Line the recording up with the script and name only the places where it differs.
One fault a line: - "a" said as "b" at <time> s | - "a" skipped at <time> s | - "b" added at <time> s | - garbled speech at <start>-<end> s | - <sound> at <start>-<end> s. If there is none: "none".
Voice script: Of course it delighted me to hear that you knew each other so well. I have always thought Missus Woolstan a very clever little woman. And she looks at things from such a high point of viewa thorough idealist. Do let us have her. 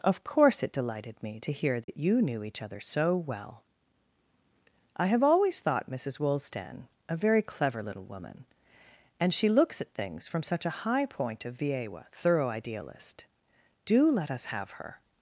- dropout at 1.8-1.9 s